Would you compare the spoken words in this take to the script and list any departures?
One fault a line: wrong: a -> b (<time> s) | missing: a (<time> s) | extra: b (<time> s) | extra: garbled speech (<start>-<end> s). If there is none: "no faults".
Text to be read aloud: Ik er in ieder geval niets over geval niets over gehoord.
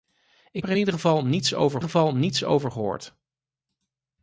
no faults